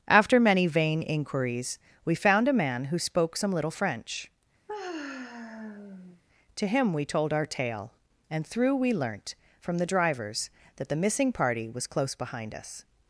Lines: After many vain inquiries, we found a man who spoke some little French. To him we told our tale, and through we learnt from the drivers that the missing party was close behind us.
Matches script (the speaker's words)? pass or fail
pass